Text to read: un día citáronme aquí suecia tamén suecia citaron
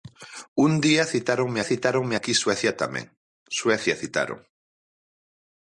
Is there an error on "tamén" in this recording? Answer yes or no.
no